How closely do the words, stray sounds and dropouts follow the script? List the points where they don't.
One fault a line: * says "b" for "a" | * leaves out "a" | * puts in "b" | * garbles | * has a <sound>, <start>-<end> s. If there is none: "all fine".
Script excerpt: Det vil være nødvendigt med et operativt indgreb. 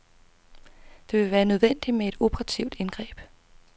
all fine